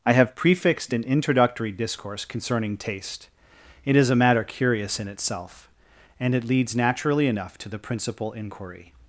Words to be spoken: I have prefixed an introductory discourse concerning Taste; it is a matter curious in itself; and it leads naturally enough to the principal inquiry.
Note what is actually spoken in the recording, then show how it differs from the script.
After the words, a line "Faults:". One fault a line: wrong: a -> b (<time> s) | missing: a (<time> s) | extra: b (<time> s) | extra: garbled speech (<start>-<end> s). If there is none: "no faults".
I have prefixed an introductory discourse concerning Taste; it is a matter curious in itself; and it leads naturally enough to the principal inquiry.
Faults:
no faults